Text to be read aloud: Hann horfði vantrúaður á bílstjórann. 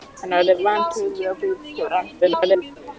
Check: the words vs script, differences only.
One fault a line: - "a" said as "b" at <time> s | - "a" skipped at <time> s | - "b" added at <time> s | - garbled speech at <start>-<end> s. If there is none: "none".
- garbled speech at 2.2-2.8 s